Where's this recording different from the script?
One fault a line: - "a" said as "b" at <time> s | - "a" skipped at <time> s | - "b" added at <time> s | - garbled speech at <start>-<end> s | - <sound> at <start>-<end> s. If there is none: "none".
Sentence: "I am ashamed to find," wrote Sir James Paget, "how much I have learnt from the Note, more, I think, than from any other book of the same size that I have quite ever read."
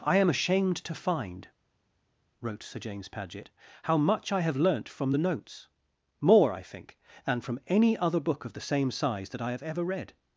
- "Note" said as "Notes" at 5.2 s
- "quite" skipped at 9.6 s